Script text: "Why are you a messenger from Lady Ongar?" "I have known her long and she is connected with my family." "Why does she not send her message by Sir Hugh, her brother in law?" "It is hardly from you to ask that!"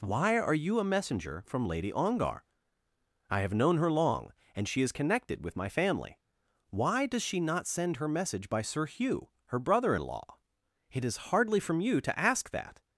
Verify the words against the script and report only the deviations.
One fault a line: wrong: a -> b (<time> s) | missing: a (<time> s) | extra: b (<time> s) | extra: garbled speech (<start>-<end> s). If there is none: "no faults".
no faults